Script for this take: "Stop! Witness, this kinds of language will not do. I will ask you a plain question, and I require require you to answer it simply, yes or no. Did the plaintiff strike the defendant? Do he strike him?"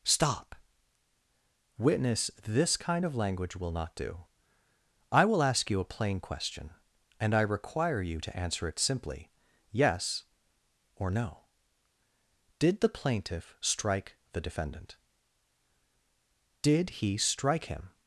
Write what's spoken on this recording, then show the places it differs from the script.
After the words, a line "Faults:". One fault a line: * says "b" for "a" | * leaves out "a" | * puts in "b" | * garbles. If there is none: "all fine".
"Stop! Witness, this kind of language will not do. I will ask you a plain question, and I require you to answer it simply, yes or no. Did the plaintiff strike the defendant? Did he strike him?"
Faults:
* says "kind" for "kinds"
* leaves out "require"
* says "Did" for "Do"